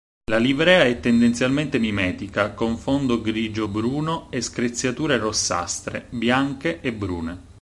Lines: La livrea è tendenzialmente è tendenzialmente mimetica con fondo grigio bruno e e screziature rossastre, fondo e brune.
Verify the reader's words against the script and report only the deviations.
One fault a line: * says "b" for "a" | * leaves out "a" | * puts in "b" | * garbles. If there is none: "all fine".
* leaves out "è tendenzialmente"
* leaves out "e"
* says "bianche" for "fondo"